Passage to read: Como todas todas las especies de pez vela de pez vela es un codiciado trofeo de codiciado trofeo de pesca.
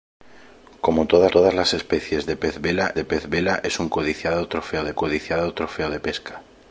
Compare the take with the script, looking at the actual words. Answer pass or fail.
pass